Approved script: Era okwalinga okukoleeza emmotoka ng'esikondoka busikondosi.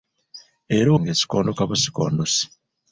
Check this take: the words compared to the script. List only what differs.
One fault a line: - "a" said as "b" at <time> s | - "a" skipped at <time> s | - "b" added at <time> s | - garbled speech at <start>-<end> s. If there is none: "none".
- "okwalinga okukoleeza emmotoka" skipped at 0.9 s